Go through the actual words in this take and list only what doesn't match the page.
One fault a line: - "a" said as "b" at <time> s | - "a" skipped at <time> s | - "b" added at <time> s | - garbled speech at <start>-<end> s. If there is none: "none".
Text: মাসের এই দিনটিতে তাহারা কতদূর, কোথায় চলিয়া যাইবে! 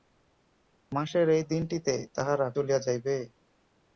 - "কতদূর কোথায়" skipped at 2.5 s